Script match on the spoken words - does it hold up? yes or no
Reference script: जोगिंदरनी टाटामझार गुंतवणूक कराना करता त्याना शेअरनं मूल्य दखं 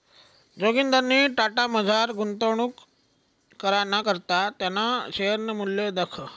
yes